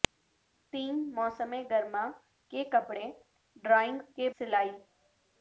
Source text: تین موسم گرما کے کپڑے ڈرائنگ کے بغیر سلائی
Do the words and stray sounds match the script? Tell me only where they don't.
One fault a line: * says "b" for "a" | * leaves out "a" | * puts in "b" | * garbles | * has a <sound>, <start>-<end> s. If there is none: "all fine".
* leaves out "بغیر"